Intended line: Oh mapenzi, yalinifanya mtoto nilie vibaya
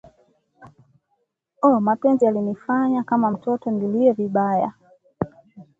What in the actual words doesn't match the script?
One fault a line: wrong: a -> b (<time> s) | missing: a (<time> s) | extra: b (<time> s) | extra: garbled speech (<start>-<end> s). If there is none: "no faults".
extra: kama (3.0 s)